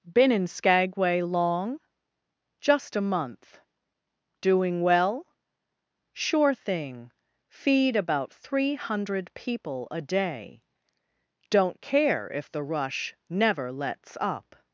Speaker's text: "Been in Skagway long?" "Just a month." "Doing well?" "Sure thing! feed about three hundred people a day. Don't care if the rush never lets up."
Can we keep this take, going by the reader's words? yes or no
yes